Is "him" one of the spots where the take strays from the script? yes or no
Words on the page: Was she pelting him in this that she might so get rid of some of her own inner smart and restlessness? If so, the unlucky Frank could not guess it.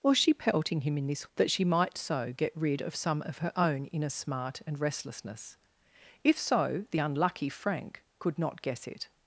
no